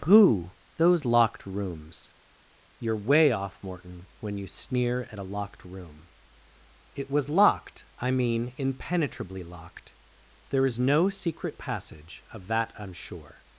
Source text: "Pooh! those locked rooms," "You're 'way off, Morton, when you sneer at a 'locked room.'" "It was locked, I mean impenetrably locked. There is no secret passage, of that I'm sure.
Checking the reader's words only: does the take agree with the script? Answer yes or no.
yes